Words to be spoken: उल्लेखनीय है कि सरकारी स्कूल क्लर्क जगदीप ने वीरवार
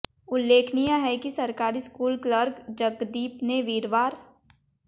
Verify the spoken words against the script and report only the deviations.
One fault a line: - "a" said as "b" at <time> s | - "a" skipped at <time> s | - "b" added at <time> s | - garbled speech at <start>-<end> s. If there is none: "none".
none